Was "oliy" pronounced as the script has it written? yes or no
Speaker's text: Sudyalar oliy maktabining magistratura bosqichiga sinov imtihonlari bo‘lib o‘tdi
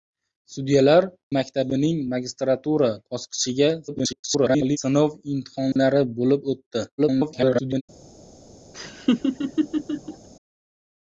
no